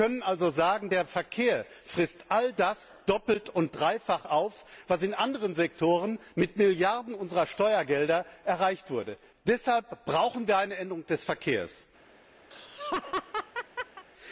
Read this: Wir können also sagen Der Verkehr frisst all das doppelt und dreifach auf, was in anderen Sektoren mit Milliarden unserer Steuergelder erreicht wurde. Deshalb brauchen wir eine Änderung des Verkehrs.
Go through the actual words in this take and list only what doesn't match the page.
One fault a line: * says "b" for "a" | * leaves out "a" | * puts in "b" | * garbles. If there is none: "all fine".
all fine